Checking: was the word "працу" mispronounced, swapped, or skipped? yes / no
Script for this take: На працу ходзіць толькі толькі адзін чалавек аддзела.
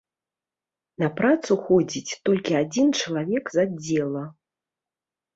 no